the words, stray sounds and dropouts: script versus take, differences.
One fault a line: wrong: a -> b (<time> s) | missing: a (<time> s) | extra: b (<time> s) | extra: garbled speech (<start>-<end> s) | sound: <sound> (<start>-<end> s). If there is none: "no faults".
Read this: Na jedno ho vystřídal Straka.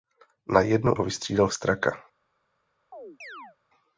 sound: chirp (2.9-3.6 s)